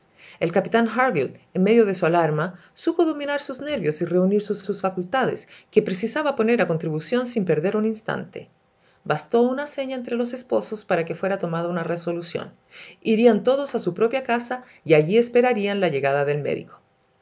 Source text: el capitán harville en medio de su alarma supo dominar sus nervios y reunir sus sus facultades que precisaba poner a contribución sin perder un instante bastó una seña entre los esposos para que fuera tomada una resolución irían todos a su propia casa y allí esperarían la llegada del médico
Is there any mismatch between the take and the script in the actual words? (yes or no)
no